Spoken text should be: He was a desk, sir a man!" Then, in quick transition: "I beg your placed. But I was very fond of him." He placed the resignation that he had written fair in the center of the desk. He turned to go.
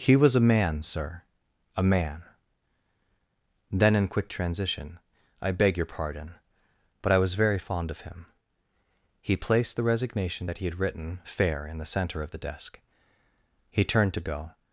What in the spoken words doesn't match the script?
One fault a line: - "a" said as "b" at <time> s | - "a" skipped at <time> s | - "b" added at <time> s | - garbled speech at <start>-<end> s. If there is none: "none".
- "desk" said as "man" at 0.4 s
- "placed" said as "pardon" at 5.8 s